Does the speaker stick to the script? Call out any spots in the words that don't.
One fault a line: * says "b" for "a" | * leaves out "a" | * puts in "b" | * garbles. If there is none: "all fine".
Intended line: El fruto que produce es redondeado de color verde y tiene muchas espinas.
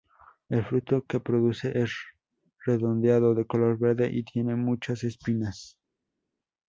all fine